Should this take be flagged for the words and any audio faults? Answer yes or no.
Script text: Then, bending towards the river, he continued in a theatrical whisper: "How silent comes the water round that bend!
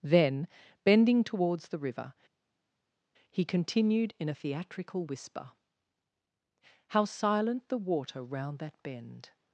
yes